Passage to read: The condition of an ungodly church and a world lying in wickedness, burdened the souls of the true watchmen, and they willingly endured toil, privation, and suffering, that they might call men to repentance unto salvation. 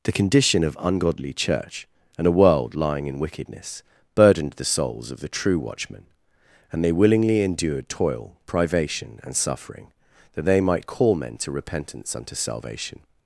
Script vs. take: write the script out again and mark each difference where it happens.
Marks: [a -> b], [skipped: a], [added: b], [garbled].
The condition of [skipped: an] ungodly church and a world lying in wickedness, burdened the souls of the true watchmen, and they willingly endured toil, privation, and suffering, that they might call men to repentance unto salvation.